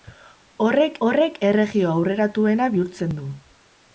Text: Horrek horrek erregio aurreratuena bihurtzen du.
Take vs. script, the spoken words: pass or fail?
pass